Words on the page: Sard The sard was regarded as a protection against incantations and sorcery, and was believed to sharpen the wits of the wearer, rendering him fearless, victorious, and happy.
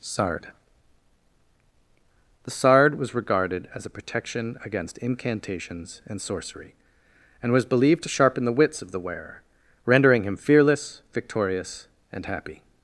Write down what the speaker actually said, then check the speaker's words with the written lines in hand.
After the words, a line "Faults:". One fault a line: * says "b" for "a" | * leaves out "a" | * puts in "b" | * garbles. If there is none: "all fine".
Sard The sard was regarded as a protection against incantations and sorcery, and was believed to sharpen the wits of the wearer, rendering him fearless, victorious, and happy.
Faults:
all fine